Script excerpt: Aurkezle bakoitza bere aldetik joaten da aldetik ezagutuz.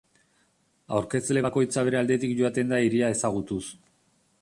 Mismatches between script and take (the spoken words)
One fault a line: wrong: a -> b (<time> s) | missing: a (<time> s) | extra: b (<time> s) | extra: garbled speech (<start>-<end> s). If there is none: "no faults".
wrong: aldetik -> hiria (2.8 s)